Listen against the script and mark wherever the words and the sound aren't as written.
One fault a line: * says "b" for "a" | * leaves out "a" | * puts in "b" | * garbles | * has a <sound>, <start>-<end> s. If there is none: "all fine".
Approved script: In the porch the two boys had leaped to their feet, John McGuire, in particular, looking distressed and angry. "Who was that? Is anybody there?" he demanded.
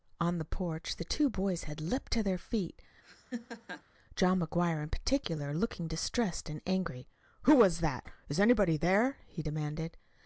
* says "On" for "In"
* has a laugh, 3.0-3.8 s